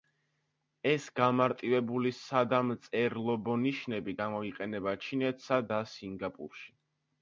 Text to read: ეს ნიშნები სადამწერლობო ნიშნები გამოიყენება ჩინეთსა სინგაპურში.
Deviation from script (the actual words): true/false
true